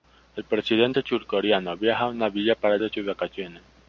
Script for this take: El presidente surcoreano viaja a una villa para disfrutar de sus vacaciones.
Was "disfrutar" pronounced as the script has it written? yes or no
no